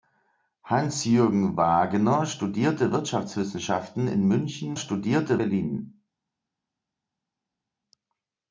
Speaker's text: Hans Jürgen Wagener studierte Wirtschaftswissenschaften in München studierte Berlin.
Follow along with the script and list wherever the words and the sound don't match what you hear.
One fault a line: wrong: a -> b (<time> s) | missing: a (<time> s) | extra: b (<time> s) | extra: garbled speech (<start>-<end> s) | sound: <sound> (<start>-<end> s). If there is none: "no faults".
no faults